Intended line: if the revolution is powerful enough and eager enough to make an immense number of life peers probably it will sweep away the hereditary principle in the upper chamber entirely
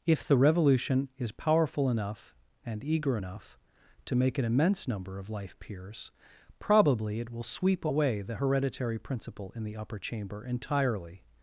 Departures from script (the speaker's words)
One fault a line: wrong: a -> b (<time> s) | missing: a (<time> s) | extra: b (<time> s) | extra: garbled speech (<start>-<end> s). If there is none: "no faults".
no faults